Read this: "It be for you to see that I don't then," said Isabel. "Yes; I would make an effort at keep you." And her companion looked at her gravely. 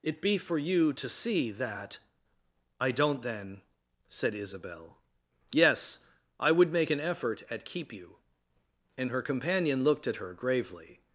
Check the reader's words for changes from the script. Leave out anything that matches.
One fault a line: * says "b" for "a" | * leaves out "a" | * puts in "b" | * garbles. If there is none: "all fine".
all fine